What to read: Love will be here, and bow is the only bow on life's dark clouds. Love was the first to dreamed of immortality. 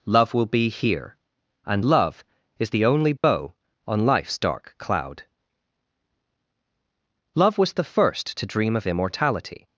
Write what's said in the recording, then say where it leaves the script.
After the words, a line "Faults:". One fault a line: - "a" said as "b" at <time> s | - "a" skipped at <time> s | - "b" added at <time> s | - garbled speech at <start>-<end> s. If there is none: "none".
Love will be here, and love is the only bow on life's dark cloud. Love was the first to dream of immortality.
Faults:
- "bow" said as "love" at 1.8 s
- "clouds" said as "cloud" at 4.8 s
- "dreamed" said as "dream" at 8.4 s